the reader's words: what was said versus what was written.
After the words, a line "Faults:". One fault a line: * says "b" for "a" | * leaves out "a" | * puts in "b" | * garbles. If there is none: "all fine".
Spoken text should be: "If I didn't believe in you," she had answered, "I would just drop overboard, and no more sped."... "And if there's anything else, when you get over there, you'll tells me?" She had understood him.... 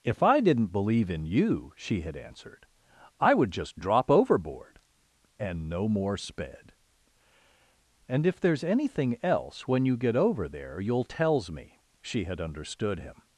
"If I didn't believe in you," she had answered, "I would just drop overboard, and no more sped."... "And if there's anything else, when you get over there, you'll tells me?" She had understood him....
Faults:
all fine